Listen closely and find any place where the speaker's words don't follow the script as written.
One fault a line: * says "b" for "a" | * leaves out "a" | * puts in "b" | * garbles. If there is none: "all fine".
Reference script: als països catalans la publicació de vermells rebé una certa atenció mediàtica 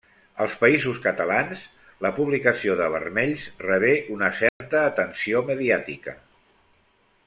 all fine